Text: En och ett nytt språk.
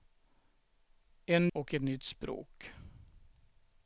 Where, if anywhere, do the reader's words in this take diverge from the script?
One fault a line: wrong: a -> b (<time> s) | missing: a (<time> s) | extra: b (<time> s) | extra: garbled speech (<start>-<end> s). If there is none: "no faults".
no faults